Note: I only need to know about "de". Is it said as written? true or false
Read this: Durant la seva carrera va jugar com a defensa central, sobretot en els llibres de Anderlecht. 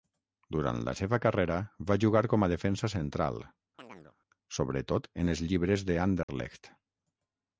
true